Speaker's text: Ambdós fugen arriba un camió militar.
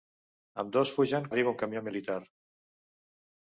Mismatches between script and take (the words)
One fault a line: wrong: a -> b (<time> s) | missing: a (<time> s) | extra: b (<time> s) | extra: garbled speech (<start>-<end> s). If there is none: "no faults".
no faults